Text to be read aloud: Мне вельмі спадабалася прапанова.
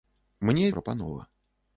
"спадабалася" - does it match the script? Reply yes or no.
no